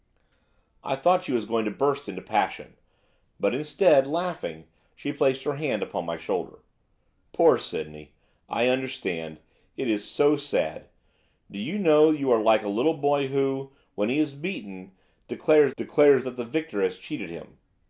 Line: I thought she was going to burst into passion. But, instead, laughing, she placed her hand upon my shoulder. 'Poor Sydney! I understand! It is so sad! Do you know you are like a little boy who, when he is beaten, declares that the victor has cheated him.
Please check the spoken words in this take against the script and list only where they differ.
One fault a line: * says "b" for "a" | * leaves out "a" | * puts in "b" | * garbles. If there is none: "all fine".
* puts in "declares"